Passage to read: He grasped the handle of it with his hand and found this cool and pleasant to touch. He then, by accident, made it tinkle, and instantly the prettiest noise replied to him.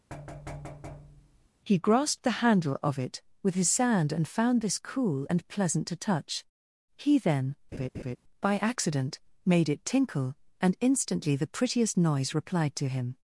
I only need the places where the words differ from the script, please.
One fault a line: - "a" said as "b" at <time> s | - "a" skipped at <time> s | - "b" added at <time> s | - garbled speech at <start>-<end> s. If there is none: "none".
- "hand" said as "sand" at 3.7 s